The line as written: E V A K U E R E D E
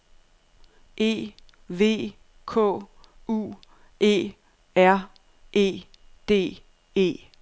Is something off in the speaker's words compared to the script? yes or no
yes